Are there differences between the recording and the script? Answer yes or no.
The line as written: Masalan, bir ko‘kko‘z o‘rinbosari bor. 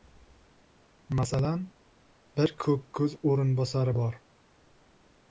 no